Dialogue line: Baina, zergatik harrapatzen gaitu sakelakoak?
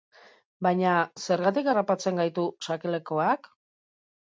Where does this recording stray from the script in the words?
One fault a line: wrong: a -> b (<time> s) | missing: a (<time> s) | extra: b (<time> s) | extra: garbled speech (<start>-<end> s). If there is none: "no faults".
no faults